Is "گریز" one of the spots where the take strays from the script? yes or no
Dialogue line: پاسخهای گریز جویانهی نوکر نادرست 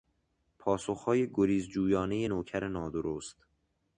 no